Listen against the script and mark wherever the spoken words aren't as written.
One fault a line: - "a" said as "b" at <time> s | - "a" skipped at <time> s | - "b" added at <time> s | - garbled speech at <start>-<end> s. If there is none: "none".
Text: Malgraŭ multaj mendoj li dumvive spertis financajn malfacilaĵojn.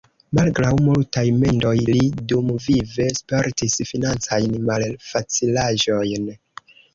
none